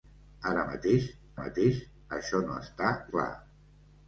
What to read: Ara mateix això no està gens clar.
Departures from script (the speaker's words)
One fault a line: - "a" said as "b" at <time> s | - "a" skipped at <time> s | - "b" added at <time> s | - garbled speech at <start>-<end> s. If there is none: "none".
- "mateix" added at 1.4 s
- "gens" skipped at 2.9 s